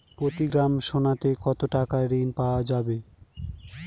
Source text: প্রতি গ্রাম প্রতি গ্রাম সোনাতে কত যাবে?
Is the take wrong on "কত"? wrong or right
wrong